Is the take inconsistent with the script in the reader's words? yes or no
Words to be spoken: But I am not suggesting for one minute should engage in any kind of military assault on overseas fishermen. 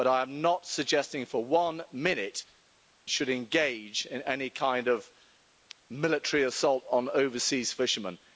no